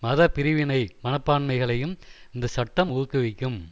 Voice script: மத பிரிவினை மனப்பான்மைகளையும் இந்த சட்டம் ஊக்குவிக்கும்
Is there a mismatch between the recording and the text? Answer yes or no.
no